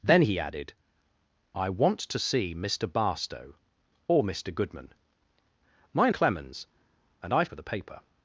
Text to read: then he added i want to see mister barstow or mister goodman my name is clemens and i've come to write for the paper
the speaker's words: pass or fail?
fail